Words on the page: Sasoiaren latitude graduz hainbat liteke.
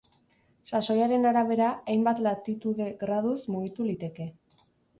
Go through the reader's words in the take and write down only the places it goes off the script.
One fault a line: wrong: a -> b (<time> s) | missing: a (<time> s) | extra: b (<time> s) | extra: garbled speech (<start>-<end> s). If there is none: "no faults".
extra: arabera hainbat (1.3 s)
wrong: hainbat -> mugitu (3.6 s)